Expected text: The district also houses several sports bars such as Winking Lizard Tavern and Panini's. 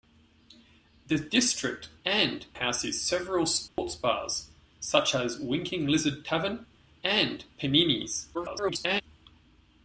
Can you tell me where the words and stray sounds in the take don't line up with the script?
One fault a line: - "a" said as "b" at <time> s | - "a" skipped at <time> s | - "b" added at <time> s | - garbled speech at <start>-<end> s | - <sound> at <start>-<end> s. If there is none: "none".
- "also" said as "and" at 2.0 s
- dropout at 3.7-3.8 s
- garbled speech at 8.3-9.0 s